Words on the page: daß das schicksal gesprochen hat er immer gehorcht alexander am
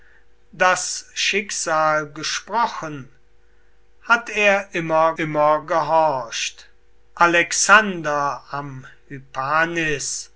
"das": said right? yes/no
no